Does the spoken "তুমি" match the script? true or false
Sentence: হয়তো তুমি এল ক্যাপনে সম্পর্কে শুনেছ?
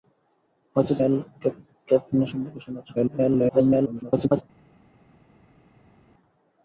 false